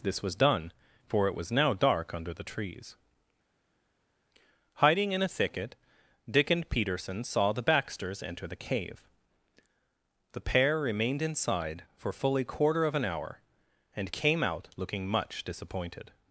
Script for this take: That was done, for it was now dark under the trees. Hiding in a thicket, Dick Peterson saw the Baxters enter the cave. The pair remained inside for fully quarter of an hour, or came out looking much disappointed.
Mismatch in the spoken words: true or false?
true